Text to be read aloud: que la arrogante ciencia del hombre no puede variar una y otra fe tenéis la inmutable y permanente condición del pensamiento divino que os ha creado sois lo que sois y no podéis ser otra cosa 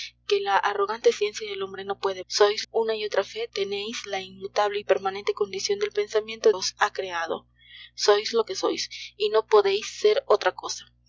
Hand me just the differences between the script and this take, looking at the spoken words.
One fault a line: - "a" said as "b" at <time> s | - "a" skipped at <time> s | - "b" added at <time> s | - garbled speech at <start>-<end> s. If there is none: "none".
- "variar" said as "sois" at 2.3 s
- "divino que" skipped at 6.5 s